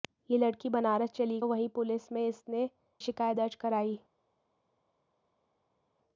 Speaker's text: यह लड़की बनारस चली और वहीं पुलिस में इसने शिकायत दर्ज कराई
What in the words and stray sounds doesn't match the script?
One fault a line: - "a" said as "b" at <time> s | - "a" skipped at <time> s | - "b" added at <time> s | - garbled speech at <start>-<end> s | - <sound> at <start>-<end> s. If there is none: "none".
none